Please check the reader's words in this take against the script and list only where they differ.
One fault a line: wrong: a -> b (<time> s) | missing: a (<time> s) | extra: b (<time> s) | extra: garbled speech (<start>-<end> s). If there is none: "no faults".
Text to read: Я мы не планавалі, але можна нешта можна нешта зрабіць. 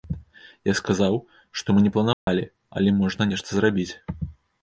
extra: сказаў што (0.8 s)
missing: можна нешта (3.5 s)